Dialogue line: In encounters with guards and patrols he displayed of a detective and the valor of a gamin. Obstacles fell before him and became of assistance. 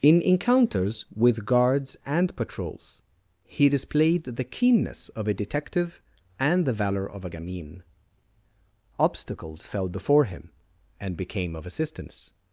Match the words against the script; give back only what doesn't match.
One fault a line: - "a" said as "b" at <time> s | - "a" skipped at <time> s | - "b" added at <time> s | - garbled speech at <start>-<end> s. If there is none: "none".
- "the keenness" added at 4.2 s